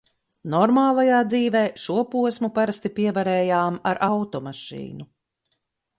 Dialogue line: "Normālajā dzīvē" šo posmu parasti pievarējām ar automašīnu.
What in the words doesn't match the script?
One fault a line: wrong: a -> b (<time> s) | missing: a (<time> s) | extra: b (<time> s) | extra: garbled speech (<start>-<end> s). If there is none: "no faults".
no faults